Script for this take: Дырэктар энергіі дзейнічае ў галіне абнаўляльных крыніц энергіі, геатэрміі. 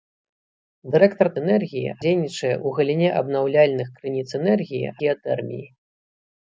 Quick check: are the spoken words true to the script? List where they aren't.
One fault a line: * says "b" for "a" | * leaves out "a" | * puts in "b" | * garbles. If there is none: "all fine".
all fine